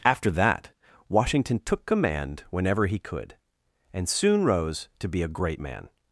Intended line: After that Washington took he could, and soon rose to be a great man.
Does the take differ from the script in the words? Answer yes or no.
yes